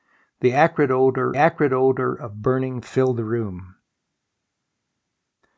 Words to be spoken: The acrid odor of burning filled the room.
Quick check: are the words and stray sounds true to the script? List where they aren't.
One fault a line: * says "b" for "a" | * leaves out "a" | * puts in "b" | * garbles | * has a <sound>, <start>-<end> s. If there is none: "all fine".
* puts in "acrid odor"